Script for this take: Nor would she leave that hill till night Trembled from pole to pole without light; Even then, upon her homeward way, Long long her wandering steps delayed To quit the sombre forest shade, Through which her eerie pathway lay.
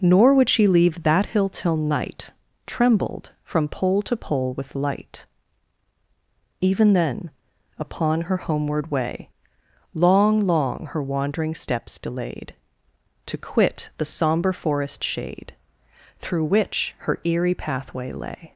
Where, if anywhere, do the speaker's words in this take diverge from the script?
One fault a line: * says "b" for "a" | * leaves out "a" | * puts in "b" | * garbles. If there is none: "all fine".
* says "with" for "without"